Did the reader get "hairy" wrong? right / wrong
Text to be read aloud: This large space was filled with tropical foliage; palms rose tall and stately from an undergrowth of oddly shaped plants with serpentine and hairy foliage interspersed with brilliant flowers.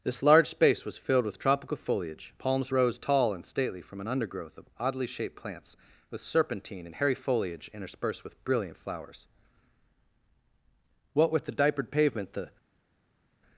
right